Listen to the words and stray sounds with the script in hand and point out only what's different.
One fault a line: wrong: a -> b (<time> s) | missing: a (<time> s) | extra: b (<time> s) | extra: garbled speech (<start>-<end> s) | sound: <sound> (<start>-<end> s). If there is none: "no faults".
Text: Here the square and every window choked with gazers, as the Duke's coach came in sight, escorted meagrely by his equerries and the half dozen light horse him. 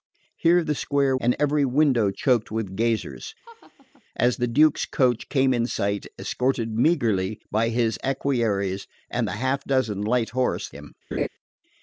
sound: laugh (3.4-4.0 s)
sound: laugh (11.1-11.3 s)